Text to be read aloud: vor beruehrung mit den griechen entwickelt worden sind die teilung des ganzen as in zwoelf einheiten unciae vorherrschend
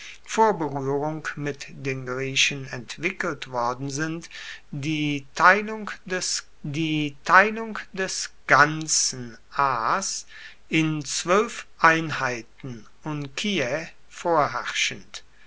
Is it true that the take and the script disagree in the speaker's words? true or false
true